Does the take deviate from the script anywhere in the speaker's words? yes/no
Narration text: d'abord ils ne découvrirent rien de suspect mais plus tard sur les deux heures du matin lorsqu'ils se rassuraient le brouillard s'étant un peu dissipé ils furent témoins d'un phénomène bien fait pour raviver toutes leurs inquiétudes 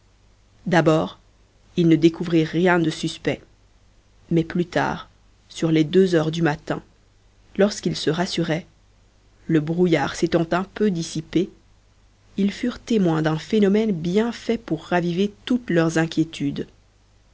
no